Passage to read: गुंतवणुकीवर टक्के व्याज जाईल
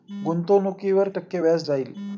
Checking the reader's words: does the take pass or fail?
pass